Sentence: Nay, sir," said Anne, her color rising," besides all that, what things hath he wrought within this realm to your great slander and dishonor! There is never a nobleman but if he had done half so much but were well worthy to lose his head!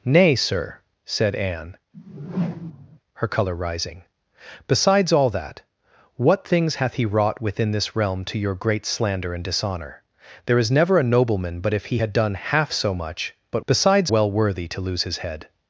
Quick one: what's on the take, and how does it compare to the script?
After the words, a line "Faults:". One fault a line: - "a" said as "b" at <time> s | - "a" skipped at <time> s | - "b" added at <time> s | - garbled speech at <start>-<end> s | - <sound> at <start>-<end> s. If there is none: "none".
Nay, sir," said Anne, her color rising," besides all that, what things hath he wrought within this realm to your great slander and dishonor! There is never a nobleman but if he had done half so much but besides well worthy to lose his head!
Faults:
- whoosh at 1.9-3.0 s
- "were" said as "besides" at 13.7 s